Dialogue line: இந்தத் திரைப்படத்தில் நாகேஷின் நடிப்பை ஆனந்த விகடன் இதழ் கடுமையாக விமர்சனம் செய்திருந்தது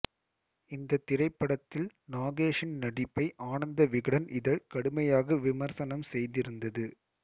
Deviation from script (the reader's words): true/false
false